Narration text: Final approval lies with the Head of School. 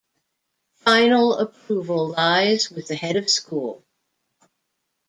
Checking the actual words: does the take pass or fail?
pass